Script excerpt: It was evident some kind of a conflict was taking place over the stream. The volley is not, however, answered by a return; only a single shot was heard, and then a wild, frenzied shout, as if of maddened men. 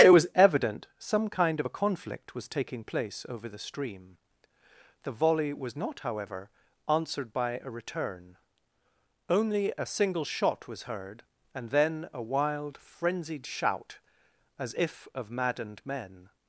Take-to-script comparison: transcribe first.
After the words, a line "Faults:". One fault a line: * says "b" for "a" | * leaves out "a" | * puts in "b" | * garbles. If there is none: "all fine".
It was evident some kind of a conflict was taking place over the stream. The volley was not, however, answered by a return; only a single shot was heard, and then a wild, frenzied shout, as if of maddened men.
Faults:
* says "was" for "is"